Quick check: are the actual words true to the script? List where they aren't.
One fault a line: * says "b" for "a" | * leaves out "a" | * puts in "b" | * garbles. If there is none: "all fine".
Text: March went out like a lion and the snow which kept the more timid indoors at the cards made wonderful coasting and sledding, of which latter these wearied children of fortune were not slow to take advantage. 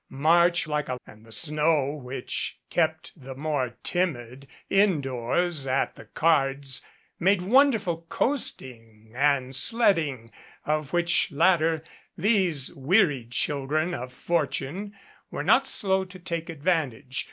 * leaves out "went out"
* leaves out "lion"